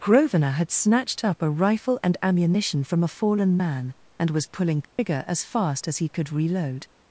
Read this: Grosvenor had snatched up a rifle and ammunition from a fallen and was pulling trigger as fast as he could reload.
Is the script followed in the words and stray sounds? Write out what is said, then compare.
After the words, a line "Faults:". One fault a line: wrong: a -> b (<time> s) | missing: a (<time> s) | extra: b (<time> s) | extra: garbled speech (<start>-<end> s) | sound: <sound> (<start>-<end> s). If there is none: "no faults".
Grosvenor had snatched up a rifle and ammunition from a fallen man, and was pulling trigger as fast as he could reload.
Faults:
extra: man (3.5 s)
sound: dropout (4.8-5.0 s)